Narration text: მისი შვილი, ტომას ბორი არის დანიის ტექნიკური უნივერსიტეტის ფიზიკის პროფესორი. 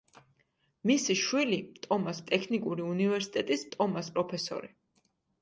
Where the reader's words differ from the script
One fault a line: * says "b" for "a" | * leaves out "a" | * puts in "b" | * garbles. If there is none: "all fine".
* leaves out "ბორი არის დანიის"
* says "ტომას" for "ფიზიკის"